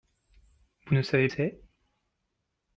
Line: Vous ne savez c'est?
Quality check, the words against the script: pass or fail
pass